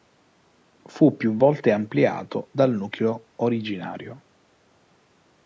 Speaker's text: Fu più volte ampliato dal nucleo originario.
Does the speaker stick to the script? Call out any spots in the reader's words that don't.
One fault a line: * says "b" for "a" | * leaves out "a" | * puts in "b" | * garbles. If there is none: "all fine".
all fine